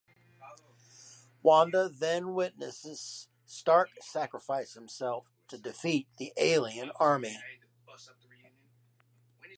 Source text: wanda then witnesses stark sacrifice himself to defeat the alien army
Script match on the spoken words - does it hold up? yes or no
yes